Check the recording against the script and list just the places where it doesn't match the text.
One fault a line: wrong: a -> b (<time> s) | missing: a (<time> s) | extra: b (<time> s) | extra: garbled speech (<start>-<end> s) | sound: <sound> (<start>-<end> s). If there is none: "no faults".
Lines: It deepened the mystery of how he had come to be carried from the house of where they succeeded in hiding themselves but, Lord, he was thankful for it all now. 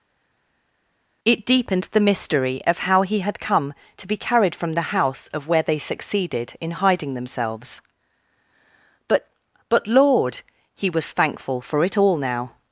extra: but (9.7 s)